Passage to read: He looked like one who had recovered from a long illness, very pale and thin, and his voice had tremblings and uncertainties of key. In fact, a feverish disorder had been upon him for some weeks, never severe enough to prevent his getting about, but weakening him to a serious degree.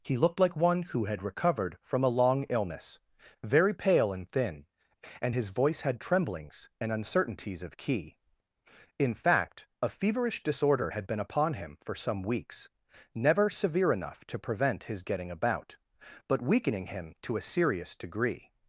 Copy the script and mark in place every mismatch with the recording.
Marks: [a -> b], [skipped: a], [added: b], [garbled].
He looked like one who had recovered from a long illness, very pale and thin, and his voice had tremblings and uncertainties of key. In fact, a feverish disorder had been upon him for some weeks, never severe enough to prevent his getting about, but weakening him to a serious degree.